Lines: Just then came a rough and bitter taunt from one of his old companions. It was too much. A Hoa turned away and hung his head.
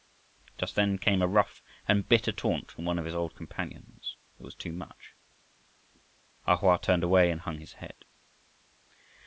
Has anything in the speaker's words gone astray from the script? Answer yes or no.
no